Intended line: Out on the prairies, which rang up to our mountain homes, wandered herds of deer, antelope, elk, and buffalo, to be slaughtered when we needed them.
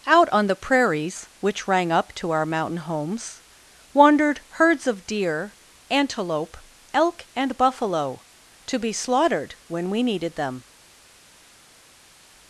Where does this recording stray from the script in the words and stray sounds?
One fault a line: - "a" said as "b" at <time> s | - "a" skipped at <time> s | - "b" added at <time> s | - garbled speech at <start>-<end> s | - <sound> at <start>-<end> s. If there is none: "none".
none